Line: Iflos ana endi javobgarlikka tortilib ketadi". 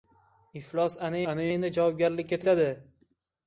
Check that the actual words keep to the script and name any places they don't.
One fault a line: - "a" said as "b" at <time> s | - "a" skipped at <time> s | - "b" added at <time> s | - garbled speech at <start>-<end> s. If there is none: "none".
- "ana" added at 1.3 s
- "tortilib" skipped at 2.4 s